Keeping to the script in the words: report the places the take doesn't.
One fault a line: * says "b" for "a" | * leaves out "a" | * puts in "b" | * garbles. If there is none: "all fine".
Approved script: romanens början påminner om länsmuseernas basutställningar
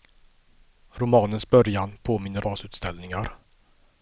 * leaves out "om länsmuseernas"